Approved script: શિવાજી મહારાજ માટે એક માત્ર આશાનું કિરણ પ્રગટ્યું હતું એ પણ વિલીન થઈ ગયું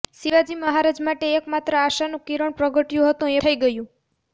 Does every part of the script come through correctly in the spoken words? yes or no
no